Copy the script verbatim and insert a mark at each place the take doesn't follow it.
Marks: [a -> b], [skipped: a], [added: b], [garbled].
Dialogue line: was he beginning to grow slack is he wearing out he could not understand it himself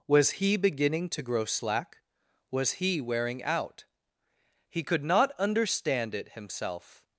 was he beginning to grow slack [is -> was] he wearing out he could not understand it himself